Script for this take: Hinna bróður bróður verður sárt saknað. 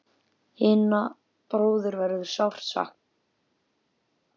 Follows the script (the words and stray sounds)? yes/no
no